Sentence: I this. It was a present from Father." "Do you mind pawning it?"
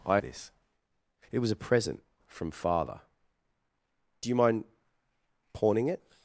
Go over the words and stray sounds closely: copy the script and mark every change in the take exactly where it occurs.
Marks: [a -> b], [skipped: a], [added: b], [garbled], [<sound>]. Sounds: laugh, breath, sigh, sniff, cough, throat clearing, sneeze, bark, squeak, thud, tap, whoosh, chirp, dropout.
I this. It was a present from Father." "Do you mind pawning it?"